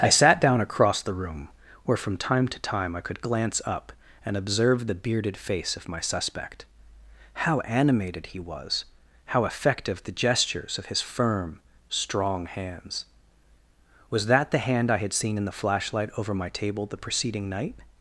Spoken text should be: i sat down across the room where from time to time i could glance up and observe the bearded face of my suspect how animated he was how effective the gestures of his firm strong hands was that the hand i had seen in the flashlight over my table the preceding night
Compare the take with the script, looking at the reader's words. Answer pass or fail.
pass